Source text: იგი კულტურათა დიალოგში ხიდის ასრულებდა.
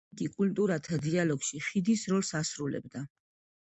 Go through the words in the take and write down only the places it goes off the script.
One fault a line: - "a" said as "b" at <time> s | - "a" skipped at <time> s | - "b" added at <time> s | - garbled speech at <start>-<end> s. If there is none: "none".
- "როლს" added at 2.1 s